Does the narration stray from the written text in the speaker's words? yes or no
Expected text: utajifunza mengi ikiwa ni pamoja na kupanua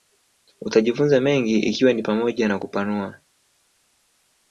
no